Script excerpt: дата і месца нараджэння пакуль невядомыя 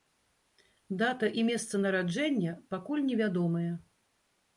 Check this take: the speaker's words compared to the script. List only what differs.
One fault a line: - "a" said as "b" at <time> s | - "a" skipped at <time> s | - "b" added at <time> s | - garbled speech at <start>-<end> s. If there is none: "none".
none